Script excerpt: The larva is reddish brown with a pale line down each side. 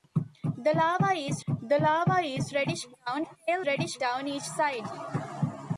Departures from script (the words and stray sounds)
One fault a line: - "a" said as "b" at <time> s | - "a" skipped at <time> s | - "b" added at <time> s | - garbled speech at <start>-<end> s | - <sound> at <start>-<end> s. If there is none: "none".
- "the larva is" added at 1.5 s
- "with" skipped at 3.3 s
- "line" said as "reddish" at 3.7 s